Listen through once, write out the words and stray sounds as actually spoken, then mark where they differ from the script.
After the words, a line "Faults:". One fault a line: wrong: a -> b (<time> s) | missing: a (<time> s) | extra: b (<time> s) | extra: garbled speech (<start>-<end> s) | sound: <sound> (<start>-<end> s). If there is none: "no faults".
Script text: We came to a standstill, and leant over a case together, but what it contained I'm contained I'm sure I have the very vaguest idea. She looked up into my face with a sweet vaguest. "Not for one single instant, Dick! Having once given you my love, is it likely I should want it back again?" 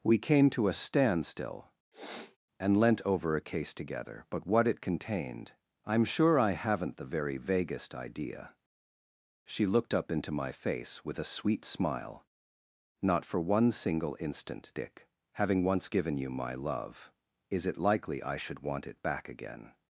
We came to a standstill, and leant over a case together, but what it contained I'm sure I haven't the very vaguest idea. She looked up into my face with a sweet smile. "Not for one single instant, Dick! Having once given you my love, is it likely I should want it back again?"
Faults:
sound: sniff (1.9-2.4 s)
missing: contained I'm (6.0 s)
wrong: have -> haven't (6.5 s)
wrong: vaguest -> smile (11.6 s)